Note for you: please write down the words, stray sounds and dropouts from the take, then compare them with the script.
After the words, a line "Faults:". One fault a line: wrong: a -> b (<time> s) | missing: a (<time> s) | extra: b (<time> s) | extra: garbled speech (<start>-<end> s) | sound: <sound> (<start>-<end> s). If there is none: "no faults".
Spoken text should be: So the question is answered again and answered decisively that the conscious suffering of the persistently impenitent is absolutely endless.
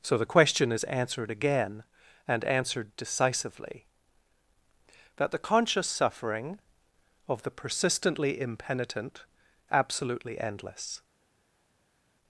So the question is answered again and answered decisively that the conscious suffering of the persistently impenitent absolutely endless.
Faults:
missing: is (9.2 s)